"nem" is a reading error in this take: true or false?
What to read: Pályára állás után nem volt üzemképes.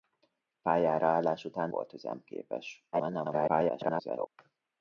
true